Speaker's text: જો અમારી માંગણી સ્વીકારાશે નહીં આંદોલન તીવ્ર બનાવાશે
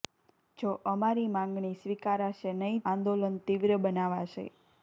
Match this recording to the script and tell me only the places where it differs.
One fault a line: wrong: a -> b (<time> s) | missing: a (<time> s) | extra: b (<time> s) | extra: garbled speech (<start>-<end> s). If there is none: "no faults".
no faults